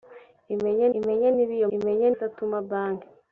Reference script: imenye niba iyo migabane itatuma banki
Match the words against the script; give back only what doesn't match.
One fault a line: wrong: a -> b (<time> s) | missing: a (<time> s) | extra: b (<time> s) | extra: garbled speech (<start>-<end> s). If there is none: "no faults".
extra: imenye (1.0 s)
wrong: migabane -> imenye (1.7 s)